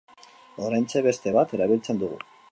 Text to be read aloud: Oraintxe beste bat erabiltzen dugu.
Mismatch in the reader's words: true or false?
false